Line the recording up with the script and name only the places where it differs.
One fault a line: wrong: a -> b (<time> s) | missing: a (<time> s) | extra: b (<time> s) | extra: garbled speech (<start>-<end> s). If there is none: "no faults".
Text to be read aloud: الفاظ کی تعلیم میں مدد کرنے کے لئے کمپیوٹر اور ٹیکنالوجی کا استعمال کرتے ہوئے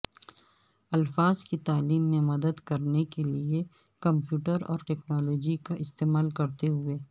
no faults